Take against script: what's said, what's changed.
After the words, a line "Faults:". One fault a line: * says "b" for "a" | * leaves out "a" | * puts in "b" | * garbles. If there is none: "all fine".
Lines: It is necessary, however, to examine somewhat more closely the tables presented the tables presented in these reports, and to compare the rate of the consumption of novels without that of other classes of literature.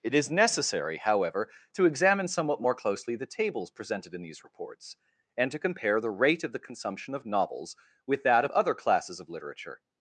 It is necessary, however, to examine somewhat more closely the tables presented in these reports, and to compare the rate of the consumption of novels with that of other classes of literature.
Faults:
* leaves out "the tables presented"
* says "with" for "without"